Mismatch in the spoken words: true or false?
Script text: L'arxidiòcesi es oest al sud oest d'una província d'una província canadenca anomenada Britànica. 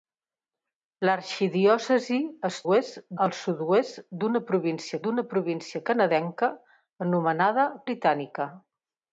false